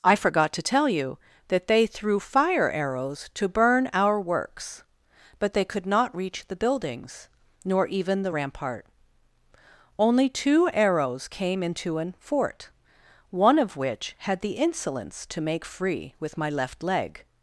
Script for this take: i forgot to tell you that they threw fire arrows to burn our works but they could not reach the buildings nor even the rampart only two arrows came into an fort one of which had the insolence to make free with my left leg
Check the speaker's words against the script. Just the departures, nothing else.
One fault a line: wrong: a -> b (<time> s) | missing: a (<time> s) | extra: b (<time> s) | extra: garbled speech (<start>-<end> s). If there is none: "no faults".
no faults